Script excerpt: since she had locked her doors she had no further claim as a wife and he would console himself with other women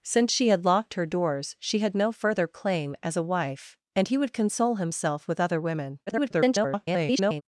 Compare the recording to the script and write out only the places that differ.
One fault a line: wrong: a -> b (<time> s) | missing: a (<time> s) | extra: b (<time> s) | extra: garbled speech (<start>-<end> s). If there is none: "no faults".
extra: garbled speech (6.1-7.4 s)